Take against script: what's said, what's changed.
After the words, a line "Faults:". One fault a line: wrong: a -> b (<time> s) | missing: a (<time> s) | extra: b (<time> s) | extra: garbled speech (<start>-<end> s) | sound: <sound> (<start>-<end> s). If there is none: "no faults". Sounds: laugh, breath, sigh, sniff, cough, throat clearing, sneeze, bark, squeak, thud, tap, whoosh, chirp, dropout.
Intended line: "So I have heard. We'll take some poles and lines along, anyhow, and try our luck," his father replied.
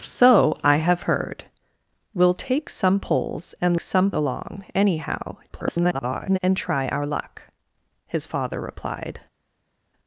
"So I have heard. We'll take some poles and some along, anyhow, [garbled] and try our luck," his father replied.
Faults:
wrong: lines -> some (3.8 s)
extra: garbled speech (5.5-6.4 s)